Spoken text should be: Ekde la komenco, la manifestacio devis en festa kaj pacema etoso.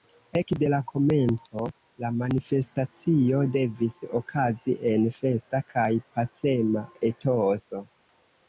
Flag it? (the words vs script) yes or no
yes